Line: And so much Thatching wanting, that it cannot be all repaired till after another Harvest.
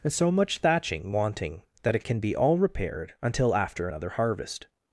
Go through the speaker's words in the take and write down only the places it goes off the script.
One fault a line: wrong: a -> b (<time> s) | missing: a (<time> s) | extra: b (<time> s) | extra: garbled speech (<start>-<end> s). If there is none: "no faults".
wrong: cannot -> can (2.0 s)
wrong: till -> until (3.2 s)